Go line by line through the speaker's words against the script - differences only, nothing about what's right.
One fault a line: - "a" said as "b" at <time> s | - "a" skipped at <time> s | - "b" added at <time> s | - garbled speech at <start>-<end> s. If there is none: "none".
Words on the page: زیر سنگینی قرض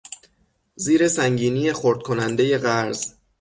- "خرد کنندهی" added at 1.7 s